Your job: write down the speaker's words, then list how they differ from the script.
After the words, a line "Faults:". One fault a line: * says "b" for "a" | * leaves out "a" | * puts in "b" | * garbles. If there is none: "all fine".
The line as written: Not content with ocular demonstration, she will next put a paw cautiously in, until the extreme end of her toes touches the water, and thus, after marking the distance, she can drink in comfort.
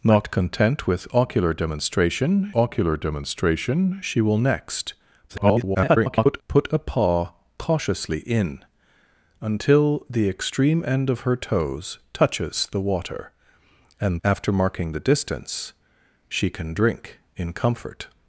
Not content with ocular demonstration ocular demonstration, she will next [garbled] put a paw cautiously in, until the extreme end of her toes touches the water, and after marking the distance, she can drink in comfort.
Faults:
* puts in "ocular demonstration"
* garbles
* leaves out "thus"